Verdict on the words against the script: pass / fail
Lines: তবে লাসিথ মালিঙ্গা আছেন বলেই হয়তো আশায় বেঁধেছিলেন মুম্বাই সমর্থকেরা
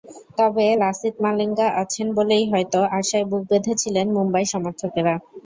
fail